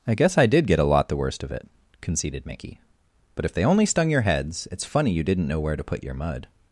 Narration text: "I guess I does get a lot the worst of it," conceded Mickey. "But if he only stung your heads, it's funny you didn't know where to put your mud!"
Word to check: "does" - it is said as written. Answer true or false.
false